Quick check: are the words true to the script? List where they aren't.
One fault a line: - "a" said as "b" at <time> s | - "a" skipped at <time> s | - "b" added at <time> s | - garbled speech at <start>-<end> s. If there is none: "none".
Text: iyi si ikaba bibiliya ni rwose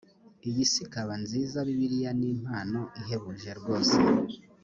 - "nziza" added at 1.2 s
- "impano ihebuje" added at 2.3 s